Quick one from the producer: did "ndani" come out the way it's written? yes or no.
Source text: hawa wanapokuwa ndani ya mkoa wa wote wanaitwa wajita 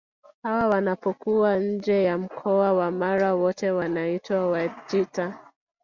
no